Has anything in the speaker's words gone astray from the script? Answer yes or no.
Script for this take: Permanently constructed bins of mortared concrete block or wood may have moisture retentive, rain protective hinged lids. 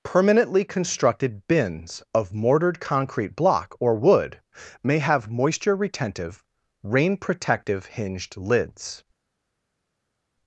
no